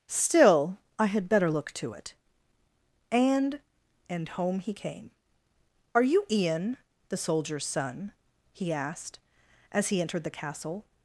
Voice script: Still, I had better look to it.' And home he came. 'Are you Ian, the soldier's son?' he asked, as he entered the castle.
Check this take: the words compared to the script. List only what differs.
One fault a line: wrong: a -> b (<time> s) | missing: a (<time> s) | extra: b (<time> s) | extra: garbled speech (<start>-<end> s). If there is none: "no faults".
extra: And (4.1 s)